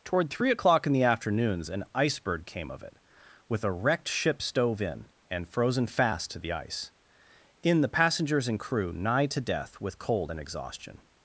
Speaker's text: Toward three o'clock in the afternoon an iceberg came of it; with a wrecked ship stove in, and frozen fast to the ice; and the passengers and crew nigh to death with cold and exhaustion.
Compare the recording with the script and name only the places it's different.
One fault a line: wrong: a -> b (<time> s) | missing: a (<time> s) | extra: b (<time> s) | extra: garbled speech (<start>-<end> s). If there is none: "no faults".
wrong: afternoon -> afternoons (1.0 s)
wrong: and -> in (7.6 s)